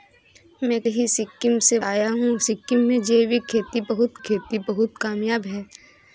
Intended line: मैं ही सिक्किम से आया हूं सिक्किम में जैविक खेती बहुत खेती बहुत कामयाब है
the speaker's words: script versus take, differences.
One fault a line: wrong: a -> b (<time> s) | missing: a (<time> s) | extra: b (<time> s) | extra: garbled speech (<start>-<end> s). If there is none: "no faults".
no faults